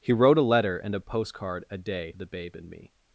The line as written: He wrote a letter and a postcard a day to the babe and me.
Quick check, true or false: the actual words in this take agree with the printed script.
false